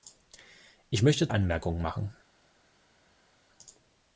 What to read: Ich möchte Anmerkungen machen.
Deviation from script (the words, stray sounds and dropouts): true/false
false